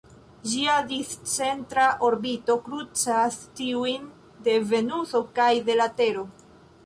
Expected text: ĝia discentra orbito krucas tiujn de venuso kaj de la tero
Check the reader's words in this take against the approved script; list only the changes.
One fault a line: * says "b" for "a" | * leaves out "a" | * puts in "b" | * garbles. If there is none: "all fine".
all fine